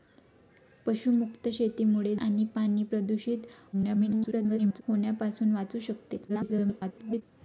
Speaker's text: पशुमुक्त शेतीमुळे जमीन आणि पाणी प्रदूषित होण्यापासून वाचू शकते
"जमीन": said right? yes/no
no